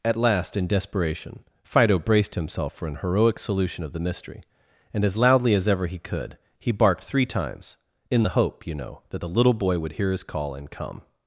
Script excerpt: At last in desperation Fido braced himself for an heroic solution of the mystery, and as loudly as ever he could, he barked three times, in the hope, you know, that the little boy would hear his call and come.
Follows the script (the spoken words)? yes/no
yes